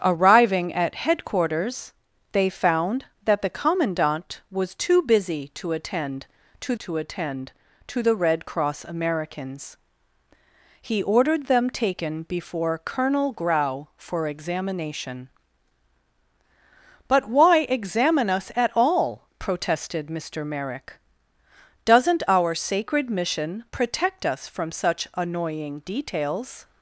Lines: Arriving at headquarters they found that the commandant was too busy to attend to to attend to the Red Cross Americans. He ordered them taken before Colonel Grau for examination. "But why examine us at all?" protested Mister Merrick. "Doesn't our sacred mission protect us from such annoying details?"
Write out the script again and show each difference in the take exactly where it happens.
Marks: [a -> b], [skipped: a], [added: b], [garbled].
Arriving at headquarters they found that the commandant was too busy to attend to to attend to the Red Cross Americans. He ordered them taken before Colonel Grau for examination. "But why examine us at all?" protested Mister Merrick. "Doesn't our sacred mission protect us from such annoying details?"